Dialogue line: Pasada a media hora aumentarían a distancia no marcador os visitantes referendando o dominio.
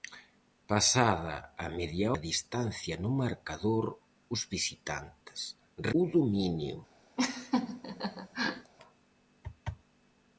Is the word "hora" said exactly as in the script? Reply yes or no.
no